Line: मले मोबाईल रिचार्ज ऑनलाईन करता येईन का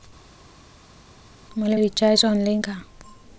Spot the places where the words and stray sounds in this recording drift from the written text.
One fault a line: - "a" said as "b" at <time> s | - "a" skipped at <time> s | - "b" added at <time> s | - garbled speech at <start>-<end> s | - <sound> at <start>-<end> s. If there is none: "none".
- "मोबाईल" skipped at 1.8 s
- "करता येईन" skipped at 2.6 s